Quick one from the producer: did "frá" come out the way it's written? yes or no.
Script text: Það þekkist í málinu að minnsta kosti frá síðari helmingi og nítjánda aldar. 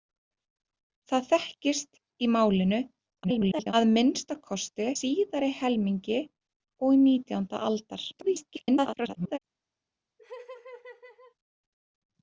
no